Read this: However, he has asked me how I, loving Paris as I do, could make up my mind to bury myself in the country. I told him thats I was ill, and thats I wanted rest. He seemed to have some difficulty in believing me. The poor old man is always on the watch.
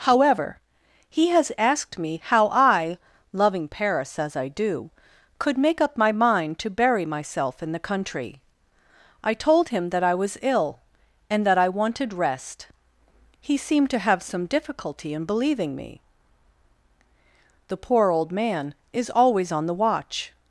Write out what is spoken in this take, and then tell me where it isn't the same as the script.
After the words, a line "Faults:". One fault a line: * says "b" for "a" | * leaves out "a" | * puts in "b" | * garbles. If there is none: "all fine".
However, he has asked me how I, loving Paris as I do, could make up my mind to bury myself in the country. I told him that I was ill, and that I wanted rest. He seemed to have some difficulty in believing me. The poor old man is always on the watch.
Faults:
* says "that" for "thats"
* says "that" for "thats"